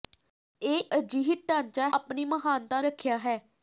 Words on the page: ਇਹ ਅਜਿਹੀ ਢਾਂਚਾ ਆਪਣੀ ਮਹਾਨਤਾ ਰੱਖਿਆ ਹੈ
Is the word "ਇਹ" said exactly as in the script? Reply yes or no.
yes